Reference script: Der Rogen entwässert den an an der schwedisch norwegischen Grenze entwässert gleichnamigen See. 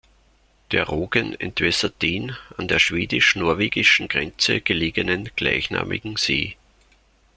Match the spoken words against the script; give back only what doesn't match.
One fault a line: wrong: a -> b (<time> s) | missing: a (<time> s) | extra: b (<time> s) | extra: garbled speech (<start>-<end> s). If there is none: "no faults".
missing: an (2.7 s)
wrong: entwässert -> gelegenen (4.6 s)